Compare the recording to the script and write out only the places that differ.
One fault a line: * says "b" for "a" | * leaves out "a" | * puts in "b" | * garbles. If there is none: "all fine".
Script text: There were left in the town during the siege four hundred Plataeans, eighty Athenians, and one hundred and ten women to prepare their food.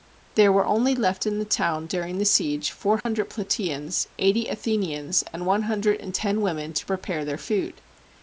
* puts in "only"